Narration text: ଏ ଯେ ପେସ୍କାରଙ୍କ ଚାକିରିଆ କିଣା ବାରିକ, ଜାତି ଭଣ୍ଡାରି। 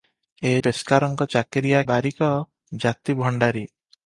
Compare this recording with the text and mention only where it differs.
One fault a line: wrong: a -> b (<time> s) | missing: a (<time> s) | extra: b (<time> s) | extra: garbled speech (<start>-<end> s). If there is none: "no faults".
missing: ଯେ (0.5 s)
missing: କିଣା (1.8 s)